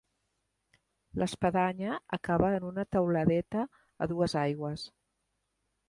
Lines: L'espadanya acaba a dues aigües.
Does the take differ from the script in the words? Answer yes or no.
yes